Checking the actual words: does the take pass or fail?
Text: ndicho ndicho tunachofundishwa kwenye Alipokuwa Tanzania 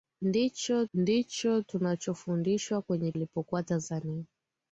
pass